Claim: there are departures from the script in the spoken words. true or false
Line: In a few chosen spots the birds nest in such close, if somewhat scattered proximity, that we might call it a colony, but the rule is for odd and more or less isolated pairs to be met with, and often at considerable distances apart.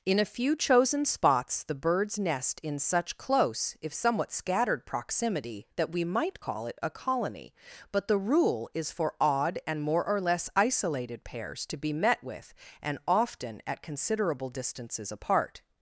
false